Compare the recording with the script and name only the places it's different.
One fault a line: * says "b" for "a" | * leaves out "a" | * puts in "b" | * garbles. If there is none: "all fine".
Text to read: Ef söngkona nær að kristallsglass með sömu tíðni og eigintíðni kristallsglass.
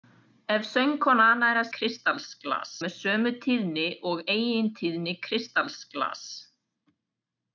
all fine